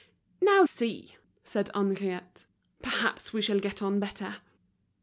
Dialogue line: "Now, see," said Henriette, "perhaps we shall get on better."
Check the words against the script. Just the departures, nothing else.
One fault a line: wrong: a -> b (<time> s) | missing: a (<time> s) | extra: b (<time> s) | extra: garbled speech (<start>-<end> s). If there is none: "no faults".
no faults